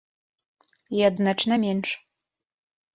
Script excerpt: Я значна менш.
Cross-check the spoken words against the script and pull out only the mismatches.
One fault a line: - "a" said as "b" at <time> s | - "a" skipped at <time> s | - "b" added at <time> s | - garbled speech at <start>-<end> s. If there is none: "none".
none